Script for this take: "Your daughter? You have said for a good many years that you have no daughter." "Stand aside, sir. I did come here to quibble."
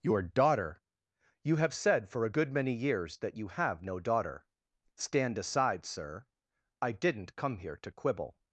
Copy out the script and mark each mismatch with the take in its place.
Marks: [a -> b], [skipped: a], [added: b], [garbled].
"Your daughter? You have said for a good many years that you have no daughter." "Stand aside, sir. I [did -> didn't] come here to quibble."